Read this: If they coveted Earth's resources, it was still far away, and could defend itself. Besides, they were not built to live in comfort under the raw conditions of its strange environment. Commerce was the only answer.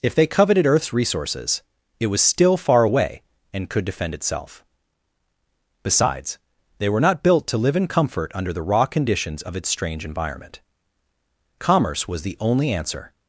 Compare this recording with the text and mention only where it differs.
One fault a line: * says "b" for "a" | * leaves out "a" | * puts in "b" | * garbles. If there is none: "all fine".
all fine